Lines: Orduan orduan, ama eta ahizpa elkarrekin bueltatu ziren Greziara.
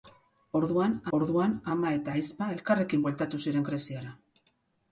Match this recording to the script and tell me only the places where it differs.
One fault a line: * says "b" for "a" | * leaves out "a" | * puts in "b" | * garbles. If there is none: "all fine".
all fine